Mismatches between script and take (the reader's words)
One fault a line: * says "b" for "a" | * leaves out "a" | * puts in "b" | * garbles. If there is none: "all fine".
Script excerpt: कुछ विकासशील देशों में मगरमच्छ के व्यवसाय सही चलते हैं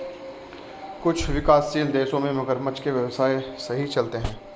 all fine